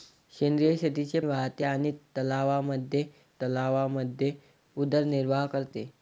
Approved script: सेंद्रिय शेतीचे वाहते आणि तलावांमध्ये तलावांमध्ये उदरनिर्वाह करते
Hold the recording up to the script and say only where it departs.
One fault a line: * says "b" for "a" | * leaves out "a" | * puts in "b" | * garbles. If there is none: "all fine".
all fine